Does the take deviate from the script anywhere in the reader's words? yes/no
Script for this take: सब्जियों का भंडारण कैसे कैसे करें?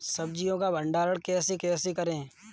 no